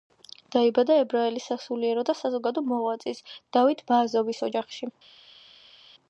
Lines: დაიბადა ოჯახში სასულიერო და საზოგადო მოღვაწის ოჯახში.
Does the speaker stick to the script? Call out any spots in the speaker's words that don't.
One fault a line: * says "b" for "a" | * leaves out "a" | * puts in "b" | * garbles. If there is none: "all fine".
* says "ებრაელი" for "ოჯახში"
* puts in "დავით ბააზოვის"